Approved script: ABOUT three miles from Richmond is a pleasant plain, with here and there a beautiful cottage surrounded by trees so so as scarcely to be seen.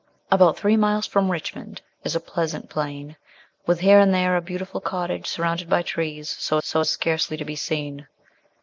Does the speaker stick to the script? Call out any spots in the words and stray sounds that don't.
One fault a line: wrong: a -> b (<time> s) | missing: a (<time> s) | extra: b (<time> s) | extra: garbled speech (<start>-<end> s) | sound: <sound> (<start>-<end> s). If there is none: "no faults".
no faults